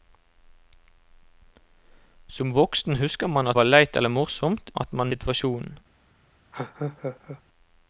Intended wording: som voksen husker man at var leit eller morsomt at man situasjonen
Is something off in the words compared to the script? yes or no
no